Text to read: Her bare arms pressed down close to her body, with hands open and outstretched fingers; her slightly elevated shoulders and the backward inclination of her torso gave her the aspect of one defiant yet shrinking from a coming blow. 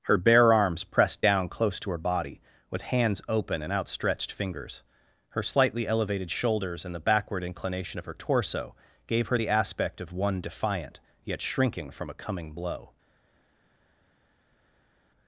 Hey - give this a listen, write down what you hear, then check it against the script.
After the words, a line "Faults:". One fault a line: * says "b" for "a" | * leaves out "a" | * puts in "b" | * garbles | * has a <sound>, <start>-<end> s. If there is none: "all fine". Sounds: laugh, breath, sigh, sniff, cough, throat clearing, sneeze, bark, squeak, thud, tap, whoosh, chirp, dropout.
Her bare arms pressed down close to her body, with hands open and outstretched fingers; her slightly elevated shoulders and the backward inclination of her torso gave her the aspect of one defiant yet shrinking from a coming blow.
Faults:
all fine